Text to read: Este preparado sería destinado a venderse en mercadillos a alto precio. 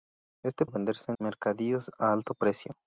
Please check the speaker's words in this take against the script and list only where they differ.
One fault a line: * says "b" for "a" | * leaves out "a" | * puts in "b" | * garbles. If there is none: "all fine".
* leaves out "preparado sería destinado"
* leaves out "en"